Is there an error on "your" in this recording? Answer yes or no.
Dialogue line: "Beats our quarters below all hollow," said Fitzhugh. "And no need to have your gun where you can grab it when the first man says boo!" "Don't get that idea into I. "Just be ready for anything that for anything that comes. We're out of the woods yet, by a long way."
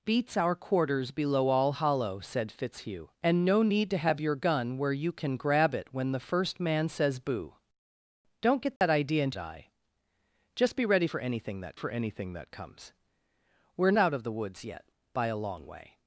no